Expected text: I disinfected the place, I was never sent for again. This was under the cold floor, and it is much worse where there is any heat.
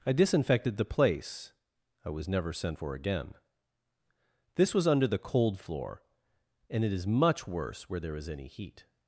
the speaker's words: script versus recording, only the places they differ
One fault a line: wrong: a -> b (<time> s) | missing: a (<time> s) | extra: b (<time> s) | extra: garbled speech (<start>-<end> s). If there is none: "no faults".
no faults